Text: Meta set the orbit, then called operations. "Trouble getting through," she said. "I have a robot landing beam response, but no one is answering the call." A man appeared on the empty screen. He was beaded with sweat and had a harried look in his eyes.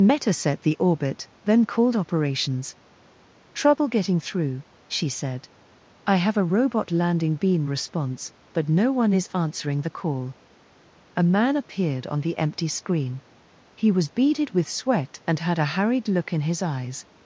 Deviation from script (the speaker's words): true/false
false